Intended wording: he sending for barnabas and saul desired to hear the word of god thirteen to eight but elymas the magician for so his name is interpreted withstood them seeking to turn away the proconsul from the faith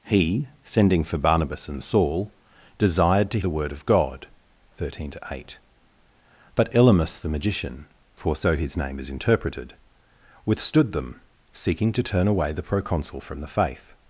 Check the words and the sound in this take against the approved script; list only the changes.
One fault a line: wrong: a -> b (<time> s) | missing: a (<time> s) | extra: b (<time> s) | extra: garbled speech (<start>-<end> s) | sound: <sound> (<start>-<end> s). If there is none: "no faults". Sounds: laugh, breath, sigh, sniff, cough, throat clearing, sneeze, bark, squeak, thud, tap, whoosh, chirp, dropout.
missing: hear (3.4 s)